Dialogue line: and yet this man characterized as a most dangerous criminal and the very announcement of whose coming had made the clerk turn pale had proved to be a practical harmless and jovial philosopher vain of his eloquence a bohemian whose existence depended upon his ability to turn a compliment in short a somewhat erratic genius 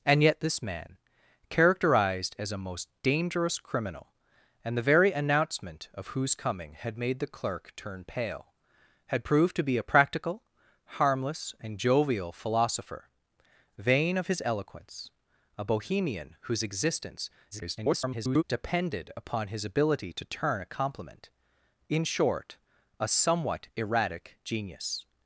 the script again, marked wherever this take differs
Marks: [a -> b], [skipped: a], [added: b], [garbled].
and yet this man characterized as a most dangerous criminal and the very announcement of whose coming had made the clerk turn pale had proved to be a practical harmless and jovial philosopher vain of his eloquence a bohemian whose existence [garbled] depended upon his ability to turn a compliment in short a somewhat erratic genius